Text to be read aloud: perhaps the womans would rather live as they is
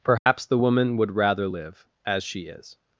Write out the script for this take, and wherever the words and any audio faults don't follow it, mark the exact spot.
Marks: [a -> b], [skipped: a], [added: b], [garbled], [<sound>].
perhaps [dropout] the [womans -> woman] would rather live as [they -> she] is